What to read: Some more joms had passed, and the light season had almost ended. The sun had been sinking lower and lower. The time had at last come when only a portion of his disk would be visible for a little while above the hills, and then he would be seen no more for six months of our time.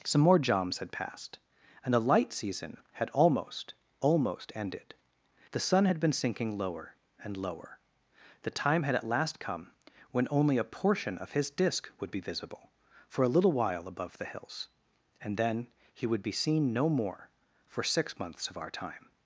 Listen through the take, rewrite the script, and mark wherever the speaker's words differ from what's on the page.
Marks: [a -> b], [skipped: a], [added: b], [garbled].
Some more joms had passed, and the light season had almost [added: almost] ended. The sun had been sinking lower and lower. The time had at last come when only a portion of his disk would be visible for a little while above the hills, and then he would be seen no more for six months of our time.